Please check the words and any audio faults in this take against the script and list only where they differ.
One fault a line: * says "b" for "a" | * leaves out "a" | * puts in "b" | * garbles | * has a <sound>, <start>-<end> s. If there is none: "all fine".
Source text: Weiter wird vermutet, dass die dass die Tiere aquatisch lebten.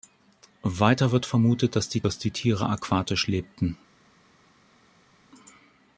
all fine